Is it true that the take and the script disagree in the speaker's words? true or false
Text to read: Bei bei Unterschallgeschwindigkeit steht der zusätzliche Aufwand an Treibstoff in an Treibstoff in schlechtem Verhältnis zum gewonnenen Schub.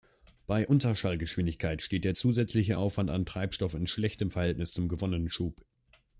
true